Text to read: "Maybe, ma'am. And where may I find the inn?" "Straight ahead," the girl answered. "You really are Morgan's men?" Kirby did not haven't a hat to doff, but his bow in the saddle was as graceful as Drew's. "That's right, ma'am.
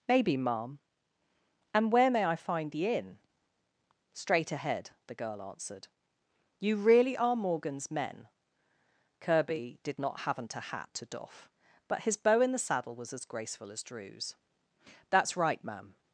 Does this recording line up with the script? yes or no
yes